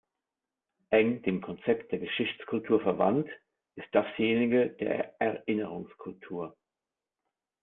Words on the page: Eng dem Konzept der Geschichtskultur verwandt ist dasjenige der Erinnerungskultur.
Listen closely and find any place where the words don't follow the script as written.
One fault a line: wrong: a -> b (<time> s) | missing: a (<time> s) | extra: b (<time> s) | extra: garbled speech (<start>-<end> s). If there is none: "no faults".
no faults